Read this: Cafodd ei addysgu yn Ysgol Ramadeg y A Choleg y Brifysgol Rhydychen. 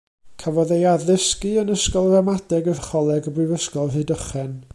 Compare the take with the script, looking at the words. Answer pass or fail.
pass